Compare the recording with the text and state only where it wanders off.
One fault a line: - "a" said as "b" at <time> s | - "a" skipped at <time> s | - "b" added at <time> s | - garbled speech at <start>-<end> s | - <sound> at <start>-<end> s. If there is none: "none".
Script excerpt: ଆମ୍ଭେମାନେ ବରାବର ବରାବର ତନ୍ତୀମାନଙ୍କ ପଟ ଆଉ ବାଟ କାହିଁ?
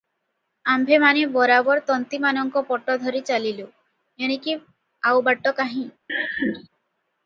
- "ବରାବର" skipped at 1.8 s
- "ଧରି ଚାଲିଲୁ ଏଣିକି" added at 3.0 s
- laugh at 6.1-6.7 s